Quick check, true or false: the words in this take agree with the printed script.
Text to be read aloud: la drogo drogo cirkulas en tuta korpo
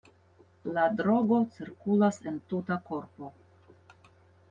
false